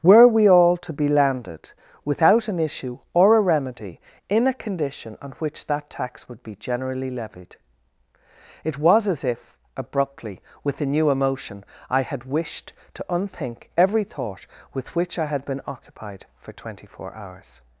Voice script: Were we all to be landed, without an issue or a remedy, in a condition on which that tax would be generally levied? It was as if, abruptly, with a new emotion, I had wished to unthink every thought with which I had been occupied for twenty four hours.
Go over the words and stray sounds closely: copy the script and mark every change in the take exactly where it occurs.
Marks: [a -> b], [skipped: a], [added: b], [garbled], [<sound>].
Were we all to be landed, without an issue or a remedy, in a condition on which that tax would be generally levied? It was as if, abruptly, with a new emotion, I had wished to unthink every thought with which I had been occupied for twenty four hours.